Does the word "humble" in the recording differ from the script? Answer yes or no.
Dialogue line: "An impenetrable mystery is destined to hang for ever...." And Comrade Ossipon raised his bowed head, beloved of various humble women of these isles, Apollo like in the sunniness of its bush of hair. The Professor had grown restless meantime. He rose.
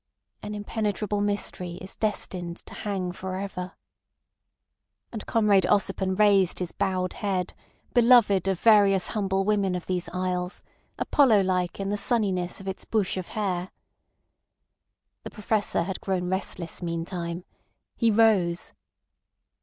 no